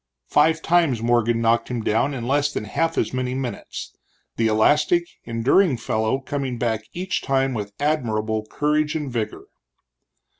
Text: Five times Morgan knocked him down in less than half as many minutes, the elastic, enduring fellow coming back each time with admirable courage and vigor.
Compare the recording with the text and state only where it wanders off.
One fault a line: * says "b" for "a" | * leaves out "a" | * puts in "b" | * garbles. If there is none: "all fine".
all fine